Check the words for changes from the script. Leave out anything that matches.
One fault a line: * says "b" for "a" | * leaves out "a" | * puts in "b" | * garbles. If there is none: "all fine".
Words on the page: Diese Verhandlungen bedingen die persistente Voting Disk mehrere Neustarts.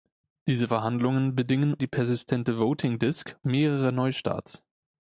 all fine